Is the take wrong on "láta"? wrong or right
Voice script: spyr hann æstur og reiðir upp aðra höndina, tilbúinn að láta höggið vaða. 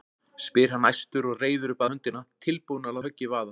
wrong